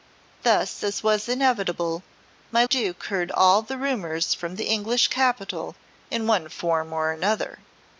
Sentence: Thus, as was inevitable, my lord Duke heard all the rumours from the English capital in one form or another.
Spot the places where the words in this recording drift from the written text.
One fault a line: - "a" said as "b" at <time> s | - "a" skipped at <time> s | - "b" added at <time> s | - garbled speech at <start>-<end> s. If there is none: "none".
- "lord" skipped at 2.6 s